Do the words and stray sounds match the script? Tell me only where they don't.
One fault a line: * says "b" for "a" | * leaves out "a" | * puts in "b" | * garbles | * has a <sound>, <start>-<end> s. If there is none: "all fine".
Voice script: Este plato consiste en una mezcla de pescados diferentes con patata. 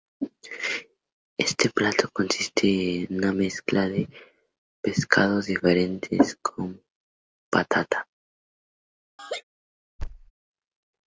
* has a laugh, 9.2-9.4 s
* has a thud, 10.0-10.3 s